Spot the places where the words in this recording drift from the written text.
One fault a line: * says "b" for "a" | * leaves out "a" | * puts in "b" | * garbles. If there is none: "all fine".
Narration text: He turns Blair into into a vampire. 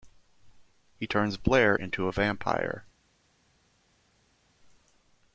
* leaves out "into"